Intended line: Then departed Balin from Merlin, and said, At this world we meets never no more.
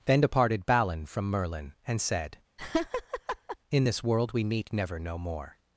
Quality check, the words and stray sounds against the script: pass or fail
fail